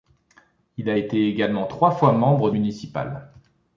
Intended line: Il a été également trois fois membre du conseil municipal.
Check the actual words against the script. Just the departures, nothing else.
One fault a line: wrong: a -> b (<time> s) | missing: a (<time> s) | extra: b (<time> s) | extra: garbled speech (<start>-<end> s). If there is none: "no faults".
missing: du conseil (2.5 s)